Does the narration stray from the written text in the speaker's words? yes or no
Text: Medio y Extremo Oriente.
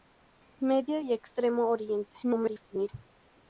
yes